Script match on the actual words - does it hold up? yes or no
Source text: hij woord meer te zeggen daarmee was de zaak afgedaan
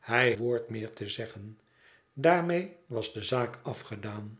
yes